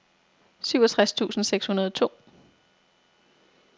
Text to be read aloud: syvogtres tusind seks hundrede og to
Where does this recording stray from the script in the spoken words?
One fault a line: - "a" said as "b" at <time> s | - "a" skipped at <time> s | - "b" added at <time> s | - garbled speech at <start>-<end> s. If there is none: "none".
none